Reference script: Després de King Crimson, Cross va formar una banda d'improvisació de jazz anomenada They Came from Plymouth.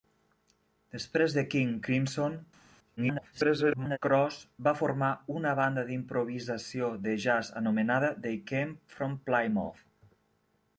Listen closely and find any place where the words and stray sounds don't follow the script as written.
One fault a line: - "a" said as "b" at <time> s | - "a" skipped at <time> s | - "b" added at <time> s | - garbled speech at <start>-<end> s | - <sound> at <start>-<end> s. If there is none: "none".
- garbled speech at 3.0-4.0 s